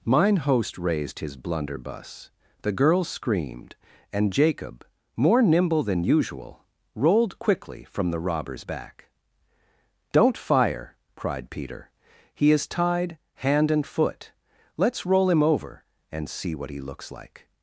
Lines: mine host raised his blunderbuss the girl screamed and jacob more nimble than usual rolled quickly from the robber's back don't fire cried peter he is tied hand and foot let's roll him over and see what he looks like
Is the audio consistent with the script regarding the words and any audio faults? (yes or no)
yes